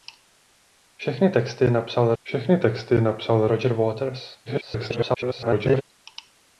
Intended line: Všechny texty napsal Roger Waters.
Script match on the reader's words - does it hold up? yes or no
no